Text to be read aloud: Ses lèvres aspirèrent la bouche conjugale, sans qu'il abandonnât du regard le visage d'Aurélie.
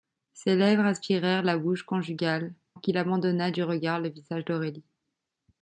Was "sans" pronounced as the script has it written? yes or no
no